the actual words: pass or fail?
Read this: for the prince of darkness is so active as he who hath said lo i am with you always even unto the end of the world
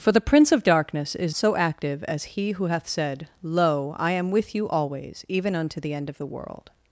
pass